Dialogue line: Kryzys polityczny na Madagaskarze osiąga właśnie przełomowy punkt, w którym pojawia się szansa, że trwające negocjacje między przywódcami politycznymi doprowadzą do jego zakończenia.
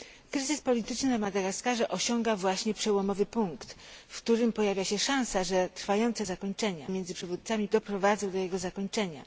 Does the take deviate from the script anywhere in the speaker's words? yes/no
yes